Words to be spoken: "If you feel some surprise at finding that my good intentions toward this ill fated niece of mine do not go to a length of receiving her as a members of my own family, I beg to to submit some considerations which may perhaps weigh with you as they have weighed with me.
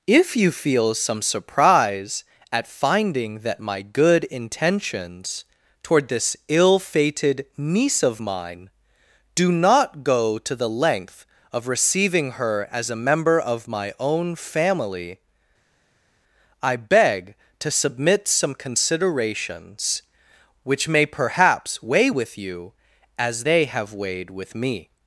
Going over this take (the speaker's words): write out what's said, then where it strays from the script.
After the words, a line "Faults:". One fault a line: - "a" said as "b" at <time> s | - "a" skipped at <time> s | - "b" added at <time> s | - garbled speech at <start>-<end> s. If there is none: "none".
"If you feel some surprise at finding that my good intentions toward this ill fated niece of mine do not go to the length of receiving her as a member of my own family, I beg to submit some considerations which may perhaps weigh with you as they have weighed with me.
Faults:
- "a" said as "the" at 10.5 s
- "members" said as "member" at 12.9 s
- "to" skipped at 17.7 s